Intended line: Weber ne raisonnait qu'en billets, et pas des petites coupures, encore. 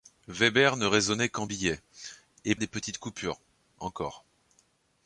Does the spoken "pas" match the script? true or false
false